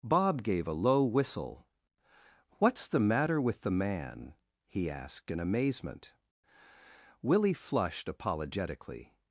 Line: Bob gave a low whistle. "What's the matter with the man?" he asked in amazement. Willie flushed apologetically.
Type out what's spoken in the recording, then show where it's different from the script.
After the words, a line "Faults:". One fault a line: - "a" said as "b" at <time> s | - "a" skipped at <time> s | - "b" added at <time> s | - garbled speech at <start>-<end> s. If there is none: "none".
Bob gave a low whistle. "What's the matter with the man?" he asked in amazement. Willie flushed apologetically.
Faults:
none